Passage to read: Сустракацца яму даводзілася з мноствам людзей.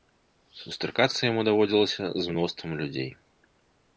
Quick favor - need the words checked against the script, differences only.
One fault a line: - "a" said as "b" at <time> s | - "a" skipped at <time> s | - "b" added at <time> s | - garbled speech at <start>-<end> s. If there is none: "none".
none